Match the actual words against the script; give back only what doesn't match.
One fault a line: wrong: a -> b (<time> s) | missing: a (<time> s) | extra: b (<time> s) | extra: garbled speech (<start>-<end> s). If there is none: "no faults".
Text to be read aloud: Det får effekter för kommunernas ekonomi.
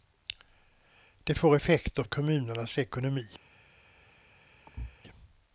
missing: för (2.0 s)